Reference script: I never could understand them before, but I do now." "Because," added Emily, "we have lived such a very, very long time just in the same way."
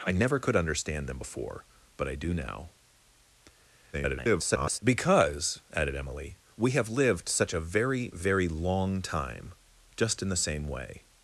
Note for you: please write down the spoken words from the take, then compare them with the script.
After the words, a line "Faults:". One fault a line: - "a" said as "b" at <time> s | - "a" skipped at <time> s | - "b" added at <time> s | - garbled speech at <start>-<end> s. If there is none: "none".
I never could understand them before, but I do now." [garbled] "Because," added Emily, "we have lived such a very, very long time just in the same way."
Faults:
- garbled speech at 3.9-4.8 s